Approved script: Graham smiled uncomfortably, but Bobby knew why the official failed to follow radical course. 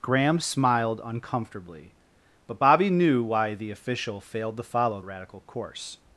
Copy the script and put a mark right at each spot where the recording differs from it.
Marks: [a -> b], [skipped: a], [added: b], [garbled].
Graham smiled uncomfortably, but Bobby knew why the official failed to follow radical course.